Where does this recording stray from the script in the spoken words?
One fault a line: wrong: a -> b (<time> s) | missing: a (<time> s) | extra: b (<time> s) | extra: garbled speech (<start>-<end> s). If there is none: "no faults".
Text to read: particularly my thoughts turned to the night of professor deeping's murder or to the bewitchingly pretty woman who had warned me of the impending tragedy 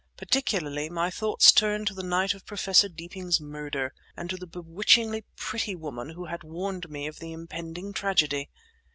wrong: or -> and (4.2 s)